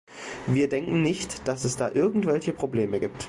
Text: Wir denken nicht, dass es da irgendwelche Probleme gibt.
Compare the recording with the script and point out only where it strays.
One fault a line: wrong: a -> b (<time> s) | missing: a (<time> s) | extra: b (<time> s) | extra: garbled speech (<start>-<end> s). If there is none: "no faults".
no faults